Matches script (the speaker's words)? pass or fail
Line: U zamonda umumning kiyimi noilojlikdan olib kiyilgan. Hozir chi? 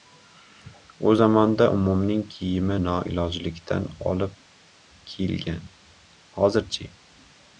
pass